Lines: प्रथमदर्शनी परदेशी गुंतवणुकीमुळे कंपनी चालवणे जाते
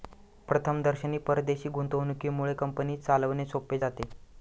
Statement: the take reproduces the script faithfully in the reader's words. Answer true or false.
false